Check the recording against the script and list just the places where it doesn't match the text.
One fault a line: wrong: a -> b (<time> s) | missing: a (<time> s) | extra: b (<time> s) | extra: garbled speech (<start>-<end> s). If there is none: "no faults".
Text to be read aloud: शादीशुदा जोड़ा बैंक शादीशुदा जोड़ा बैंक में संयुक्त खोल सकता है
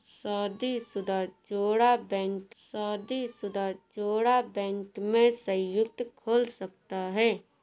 no faults